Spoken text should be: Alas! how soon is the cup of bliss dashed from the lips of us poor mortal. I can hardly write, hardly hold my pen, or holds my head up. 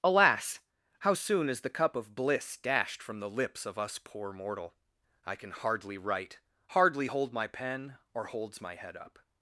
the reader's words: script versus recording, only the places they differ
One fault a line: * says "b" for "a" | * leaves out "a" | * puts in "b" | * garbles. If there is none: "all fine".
all fine